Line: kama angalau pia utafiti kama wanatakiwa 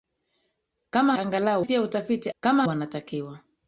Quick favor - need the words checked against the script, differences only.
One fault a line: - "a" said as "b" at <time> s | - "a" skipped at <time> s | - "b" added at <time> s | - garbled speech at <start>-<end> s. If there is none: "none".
none